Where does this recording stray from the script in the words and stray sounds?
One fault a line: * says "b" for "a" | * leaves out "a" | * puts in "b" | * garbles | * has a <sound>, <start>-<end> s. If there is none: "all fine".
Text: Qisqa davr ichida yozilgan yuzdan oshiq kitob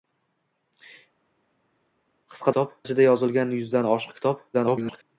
* says "kitob" for "davr"
* garbles